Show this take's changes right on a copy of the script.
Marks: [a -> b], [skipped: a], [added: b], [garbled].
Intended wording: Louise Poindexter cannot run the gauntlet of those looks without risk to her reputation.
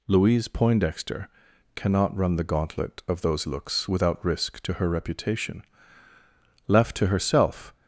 Louise Poindexter cannot run the gauntlet of those looks without risk to her reputation. [added: Left to herself]